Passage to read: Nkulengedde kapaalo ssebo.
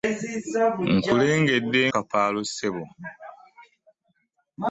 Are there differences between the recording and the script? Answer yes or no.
no